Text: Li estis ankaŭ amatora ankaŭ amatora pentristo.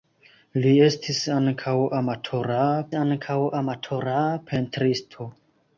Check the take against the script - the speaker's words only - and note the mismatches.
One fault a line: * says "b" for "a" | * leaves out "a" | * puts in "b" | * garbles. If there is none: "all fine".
all fine